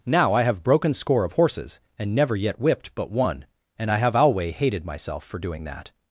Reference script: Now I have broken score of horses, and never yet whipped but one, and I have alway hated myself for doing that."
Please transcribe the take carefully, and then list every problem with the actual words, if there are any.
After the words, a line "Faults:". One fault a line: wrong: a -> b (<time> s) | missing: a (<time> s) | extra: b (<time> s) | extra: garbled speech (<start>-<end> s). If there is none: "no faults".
Now I have broken score of horses, and never yet whipped but one, and I have alway hated myself for doing that."
Faults:
no faults